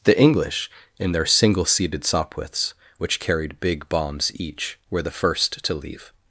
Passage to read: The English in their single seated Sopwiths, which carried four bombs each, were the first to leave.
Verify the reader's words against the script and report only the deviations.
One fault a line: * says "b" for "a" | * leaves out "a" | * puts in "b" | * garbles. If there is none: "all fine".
* says "big" for "four"